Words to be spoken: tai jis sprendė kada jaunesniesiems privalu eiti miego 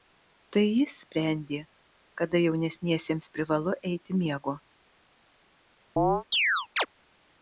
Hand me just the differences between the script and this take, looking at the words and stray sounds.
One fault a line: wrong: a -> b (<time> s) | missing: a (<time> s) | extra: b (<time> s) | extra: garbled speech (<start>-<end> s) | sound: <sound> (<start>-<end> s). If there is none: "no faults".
sound: chirp (6.0-6.9 s)